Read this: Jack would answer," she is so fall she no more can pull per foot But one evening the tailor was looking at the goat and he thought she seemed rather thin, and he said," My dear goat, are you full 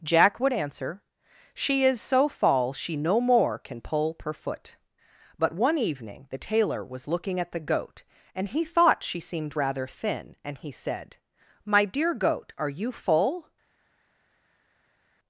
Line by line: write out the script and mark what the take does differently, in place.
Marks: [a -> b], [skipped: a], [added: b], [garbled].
Jack would answer," she is so fall she no more can pull per foot But one evening the tailor was looking at the goat and he thought she seemed rather thin, and he said," My dear goat, are you full